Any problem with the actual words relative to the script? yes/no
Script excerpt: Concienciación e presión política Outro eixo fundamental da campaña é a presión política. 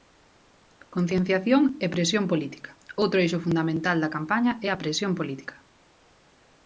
no